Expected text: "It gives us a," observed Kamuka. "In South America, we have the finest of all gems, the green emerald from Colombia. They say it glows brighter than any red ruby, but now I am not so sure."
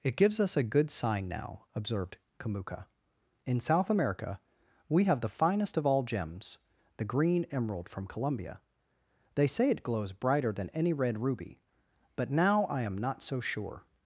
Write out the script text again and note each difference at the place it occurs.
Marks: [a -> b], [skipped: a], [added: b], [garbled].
"It gives us a," [added: good sign now] observed Kamuka. "In South America, we have the finest of all gems, the green emerald from Colombia. They say it glows brighter than any red ruby, but now I am not so sure."